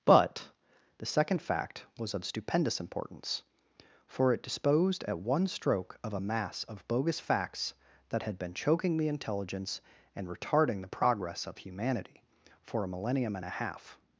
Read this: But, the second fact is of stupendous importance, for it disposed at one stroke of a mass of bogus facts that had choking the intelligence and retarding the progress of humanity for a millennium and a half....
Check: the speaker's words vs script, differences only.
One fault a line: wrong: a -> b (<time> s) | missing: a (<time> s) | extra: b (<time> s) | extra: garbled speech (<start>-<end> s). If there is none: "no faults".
wrong: is -> was (2.0 s)
extra: been (8.4 s)